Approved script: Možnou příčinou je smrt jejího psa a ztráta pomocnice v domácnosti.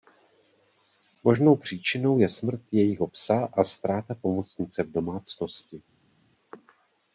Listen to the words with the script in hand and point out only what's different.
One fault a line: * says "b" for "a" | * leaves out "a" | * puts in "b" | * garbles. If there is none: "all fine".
all fine